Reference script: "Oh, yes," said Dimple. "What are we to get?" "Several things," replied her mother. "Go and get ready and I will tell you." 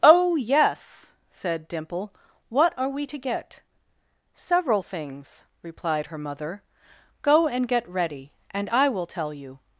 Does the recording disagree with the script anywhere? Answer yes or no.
no